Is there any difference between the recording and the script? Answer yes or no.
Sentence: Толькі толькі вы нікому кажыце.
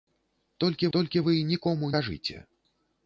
no